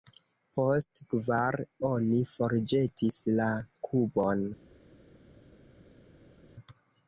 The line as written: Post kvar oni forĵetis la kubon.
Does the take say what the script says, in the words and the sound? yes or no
yes